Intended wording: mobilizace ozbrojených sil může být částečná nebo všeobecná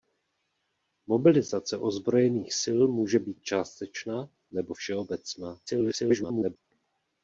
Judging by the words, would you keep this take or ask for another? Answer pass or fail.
fail